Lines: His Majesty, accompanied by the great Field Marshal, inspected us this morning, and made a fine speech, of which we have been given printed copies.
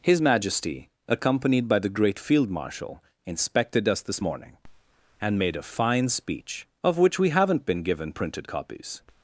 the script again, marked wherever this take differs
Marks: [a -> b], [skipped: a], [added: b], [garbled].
His Majesty, accompanied by the great Field Marshal, inspected us this morning, and made a fine speech, of which we [have -> haven't] been given printed copies.